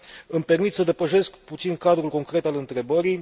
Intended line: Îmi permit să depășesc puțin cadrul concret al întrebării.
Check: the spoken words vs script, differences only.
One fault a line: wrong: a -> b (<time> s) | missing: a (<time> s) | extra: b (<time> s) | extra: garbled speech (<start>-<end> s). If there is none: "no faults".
no faults